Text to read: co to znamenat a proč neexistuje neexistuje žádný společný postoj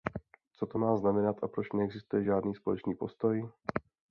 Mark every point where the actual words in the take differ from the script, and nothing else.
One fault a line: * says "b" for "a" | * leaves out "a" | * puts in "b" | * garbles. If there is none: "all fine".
* puts in "má"
* leaves out "neexistuje"